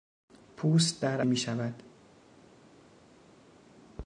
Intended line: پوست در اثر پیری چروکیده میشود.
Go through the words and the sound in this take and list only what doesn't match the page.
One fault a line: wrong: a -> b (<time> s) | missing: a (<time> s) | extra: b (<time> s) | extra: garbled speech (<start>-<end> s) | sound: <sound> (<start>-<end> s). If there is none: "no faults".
missing: اثر پیری چروکیده (1.2 s)